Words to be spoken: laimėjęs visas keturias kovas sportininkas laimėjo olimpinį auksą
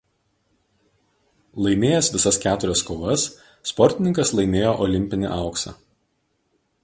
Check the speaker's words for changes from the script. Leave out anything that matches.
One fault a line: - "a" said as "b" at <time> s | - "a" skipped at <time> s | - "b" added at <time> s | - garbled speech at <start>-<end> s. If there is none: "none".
none